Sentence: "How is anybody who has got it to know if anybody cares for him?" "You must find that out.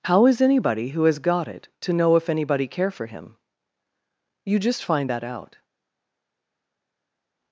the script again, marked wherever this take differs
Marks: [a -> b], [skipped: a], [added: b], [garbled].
"How is anybody who has got it to know if anybody [cares -> care] for him?" "You [must -> just] find that out.